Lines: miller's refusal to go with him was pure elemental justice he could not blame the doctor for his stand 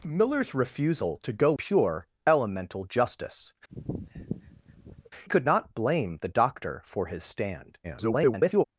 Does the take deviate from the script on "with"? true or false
true